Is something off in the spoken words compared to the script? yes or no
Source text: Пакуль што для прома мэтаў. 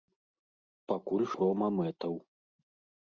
yes